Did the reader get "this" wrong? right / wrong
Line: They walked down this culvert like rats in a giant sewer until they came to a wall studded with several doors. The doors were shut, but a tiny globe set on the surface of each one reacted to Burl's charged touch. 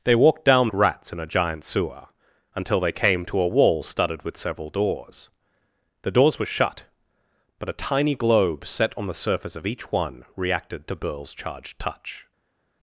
wrong